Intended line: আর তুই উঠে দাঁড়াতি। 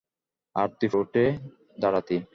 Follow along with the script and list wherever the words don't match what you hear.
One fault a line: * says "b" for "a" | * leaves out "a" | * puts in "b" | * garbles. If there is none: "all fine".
all fine